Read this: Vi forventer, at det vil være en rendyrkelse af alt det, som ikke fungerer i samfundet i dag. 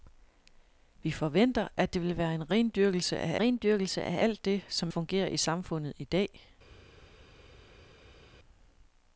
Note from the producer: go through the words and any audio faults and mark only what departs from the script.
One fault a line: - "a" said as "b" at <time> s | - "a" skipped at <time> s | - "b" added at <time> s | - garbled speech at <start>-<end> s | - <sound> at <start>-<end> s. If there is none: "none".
- "rendyrkelse af" added at 3.4 s
- "ikke" skipped at 4.9 s